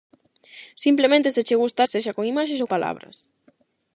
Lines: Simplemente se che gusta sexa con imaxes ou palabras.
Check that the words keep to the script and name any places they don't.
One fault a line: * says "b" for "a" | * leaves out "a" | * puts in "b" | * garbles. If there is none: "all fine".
all fine